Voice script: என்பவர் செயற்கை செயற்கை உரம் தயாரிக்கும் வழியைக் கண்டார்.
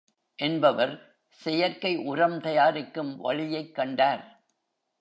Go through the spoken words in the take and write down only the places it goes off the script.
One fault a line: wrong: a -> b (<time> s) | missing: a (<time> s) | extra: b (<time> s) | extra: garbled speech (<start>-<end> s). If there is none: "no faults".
missing: செயற்கை (2.0 s)